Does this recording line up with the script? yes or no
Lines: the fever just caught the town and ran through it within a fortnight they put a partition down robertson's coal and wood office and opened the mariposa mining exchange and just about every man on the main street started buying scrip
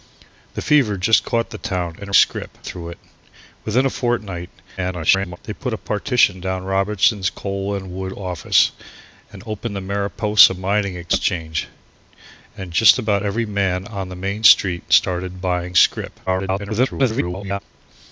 no